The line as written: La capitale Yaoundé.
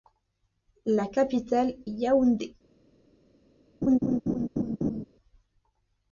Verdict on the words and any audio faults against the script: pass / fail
fail